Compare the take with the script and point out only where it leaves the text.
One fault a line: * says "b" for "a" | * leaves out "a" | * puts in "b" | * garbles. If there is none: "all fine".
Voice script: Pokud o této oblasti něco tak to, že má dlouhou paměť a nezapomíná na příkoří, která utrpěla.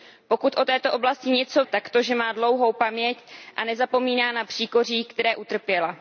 all fine